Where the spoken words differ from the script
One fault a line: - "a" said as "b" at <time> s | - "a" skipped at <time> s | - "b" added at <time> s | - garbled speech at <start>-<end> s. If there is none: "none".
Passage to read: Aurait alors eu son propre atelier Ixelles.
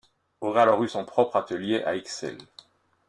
- "à" added at 1.8 s